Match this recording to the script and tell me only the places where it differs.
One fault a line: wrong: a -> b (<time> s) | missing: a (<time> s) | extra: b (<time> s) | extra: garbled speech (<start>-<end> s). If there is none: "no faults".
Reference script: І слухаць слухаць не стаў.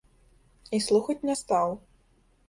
missing: слухаць (1.2 s)